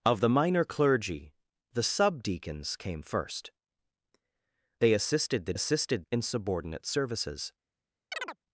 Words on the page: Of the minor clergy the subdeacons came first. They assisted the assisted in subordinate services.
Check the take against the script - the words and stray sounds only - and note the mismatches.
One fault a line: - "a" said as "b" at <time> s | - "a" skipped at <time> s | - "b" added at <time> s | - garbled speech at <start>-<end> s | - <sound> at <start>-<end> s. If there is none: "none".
- chirp at 8.1-8.4 s